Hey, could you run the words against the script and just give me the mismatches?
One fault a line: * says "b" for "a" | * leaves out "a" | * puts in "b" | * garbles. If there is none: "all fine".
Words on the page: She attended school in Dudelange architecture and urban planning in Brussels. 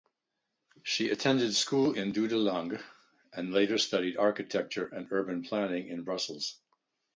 * puts in "and later studied"